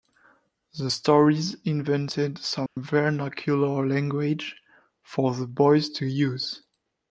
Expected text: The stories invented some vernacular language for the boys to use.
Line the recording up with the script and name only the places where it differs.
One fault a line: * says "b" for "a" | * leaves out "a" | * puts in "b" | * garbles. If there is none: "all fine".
all fine